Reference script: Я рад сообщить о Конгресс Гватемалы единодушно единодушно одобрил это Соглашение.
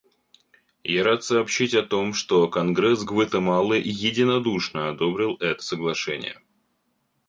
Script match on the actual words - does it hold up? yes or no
no